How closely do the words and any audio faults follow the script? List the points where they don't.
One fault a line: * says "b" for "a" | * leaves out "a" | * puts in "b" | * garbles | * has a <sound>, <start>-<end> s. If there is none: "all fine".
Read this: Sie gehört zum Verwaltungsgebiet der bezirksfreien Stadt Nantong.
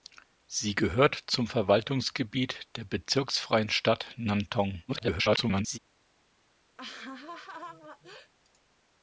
* garbles
* has a laugh, 6.8-8.3 s